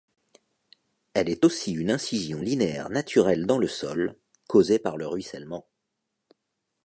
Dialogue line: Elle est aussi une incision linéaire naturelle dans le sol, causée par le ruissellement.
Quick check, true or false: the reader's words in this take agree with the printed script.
true